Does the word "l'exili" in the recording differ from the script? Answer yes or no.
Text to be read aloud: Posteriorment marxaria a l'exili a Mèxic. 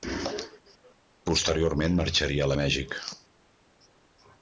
yes